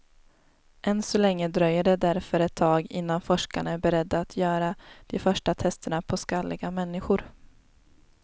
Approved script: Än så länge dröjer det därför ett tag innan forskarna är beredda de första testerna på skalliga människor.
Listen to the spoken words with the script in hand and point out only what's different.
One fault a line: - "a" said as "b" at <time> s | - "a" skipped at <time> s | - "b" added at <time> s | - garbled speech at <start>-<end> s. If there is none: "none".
- "att göra" added at 4.2 s